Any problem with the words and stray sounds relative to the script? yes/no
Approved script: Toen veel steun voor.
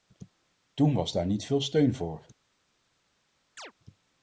yes